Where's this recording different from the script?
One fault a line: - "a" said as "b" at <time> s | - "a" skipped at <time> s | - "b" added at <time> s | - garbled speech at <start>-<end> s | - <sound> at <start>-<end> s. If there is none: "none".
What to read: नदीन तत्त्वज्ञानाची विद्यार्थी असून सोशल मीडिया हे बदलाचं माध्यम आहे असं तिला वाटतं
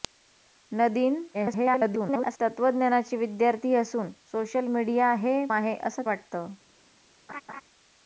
- garbled speech at 1.3-2.4 s
- "बदलाचं माध्यम" skipped at 5.4 s
- "तिला" skipped at 6.0 s
- laugh at 7.3-7.6 s